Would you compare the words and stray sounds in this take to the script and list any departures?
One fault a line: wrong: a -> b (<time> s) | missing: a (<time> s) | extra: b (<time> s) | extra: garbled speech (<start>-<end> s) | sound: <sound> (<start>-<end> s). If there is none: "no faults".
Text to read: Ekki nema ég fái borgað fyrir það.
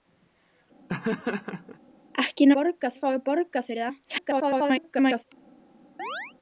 sound: laugh (0.9-1.8 s)
wrong: nema -> borgað (2.6 s)
extra: garbled speech (4.0-5.2 s)
sound: chirp (6.0-6.3 s)